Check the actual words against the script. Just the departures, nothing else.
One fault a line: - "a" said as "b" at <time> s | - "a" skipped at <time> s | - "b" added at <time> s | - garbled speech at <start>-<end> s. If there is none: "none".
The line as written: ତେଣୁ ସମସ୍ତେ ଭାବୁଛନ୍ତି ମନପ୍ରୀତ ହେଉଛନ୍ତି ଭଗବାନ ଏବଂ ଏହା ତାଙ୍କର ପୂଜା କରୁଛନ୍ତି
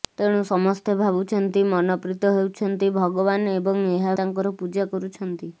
none